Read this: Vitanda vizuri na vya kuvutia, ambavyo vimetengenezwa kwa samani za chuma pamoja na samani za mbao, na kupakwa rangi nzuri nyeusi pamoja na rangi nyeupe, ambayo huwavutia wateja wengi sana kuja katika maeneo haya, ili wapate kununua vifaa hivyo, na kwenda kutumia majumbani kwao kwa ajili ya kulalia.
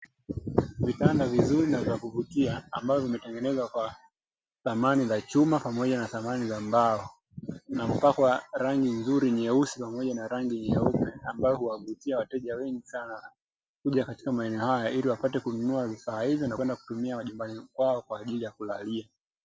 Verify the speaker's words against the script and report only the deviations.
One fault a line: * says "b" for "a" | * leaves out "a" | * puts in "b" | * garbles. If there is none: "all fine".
all fine